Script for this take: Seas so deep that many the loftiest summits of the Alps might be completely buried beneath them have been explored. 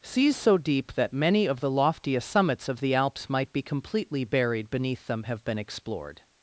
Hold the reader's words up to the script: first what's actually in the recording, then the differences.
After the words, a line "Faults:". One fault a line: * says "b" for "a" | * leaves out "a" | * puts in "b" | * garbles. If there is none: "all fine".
Seas so deep that many of the loftiest summits of the Alps might be completely buried beneath them have been explored.
Faults:
* puts in "of"